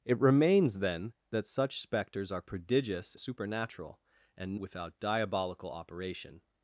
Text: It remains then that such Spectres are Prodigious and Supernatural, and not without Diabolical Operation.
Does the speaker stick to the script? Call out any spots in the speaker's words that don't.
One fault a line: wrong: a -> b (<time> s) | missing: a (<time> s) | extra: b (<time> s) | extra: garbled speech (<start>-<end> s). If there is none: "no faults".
missing: and (3.1 s)
missing: not (4.6 s)